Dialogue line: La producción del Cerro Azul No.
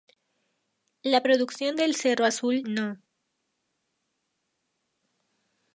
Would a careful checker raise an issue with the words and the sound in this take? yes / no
no